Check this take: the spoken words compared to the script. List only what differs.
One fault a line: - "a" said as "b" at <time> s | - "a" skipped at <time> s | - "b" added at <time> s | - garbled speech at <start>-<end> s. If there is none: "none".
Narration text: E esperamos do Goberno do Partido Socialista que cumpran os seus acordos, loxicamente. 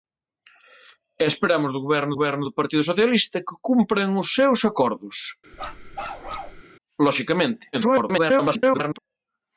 - "Goberno" added at 2.2 s
- garbled speech at 7.7-9.0 s